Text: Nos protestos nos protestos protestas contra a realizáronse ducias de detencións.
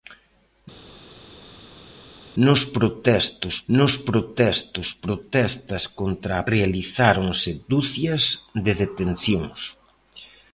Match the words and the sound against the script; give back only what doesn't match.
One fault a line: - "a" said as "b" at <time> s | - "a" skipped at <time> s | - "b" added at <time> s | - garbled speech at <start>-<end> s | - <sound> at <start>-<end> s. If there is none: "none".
none